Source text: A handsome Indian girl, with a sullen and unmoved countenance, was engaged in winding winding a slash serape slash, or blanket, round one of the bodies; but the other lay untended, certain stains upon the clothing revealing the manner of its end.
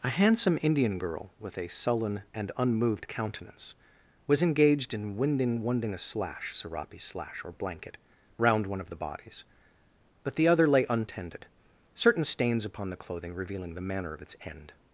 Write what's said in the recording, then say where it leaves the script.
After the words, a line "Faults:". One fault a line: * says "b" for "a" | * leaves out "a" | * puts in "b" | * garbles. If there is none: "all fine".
A handsome Indian girl, with a sullen and unmoved countenance, was engaged in winding winding a slash serape slash, or blanket, round one of the bodies; but the other lay untended, certain stains upon the clothing revealing the manner of its end.
Faults:
all fine